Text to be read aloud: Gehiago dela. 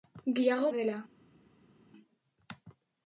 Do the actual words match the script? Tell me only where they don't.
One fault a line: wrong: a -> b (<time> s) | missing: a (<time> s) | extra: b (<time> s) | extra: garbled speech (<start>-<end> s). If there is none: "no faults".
no faults